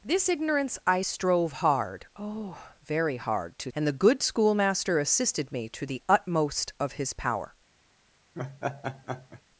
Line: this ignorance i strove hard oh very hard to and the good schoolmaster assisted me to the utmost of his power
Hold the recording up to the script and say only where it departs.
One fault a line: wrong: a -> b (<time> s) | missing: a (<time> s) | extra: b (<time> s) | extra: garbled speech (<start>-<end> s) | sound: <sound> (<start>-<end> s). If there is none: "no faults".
sound: laugh (8.3-9.4 s)